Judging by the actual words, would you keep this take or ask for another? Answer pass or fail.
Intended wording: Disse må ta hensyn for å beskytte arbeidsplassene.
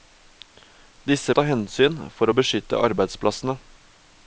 fail